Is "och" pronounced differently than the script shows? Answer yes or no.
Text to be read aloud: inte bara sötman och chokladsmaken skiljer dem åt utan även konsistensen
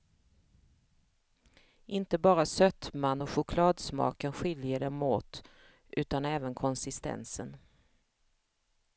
no